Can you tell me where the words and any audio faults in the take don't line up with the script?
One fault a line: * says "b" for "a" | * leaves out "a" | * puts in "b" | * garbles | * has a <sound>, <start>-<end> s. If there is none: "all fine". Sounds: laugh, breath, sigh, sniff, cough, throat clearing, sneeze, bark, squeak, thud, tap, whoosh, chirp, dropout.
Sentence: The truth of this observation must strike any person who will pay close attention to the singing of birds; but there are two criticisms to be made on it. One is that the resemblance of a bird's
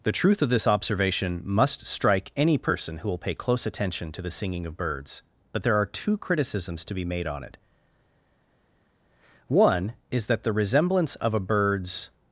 all fine